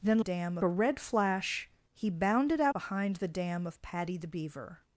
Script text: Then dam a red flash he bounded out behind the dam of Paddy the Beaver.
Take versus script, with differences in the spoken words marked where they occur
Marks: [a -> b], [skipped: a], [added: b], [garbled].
Then dam a red flash he bounded out behind the dam of Paddy the Beaver.